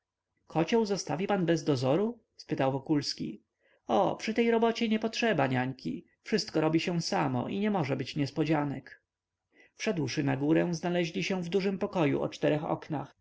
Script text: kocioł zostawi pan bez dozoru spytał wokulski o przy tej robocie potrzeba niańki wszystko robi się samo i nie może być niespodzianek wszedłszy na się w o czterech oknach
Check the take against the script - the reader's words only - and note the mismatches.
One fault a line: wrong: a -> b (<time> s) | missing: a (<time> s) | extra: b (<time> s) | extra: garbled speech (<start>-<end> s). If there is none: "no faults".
extra: nie (4.9 s)
extra: górę znaleźli (10.4 s)
extra: dużym pokoju (11.5 s)